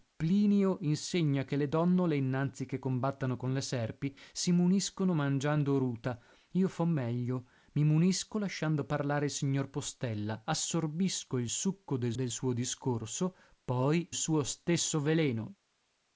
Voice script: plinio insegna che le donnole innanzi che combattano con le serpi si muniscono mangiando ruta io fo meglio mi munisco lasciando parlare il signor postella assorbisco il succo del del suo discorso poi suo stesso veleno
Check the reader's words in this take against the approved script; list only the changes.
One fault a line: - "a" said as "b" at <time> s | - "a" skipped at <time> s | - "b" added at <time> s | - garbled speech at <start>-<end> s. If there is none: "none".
none